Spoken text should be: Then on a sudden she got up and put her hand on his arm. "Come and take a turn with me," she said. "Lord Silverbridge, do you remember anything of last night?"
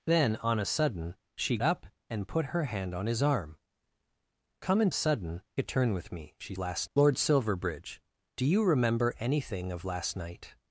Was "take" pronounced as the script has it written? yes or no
no